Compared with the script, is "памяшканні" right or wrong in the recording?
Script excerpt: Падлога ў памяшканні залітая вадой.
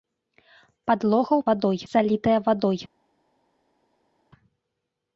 wrong